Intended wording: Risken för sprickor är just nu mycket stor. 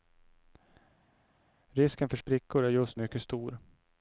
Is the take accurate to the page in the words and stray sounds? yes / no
no